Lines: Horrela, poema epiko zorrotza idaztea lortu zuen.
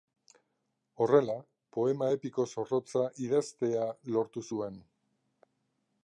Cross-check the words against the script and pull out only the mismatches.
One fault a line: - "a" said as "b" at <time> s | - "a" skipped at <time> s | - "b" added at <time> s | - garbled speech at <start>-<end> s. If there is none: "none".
none